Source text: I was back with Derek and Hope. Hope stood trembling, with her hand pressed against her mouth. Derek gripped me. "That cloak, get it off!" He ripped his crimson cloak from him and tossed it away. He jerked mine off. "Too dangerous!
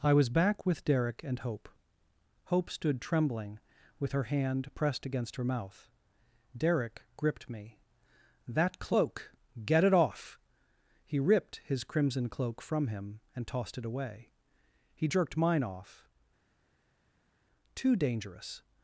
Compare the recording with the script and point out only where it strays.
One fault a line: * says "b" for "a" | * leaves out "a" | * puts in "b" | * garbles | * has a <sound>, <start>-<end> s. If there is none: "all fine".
all fine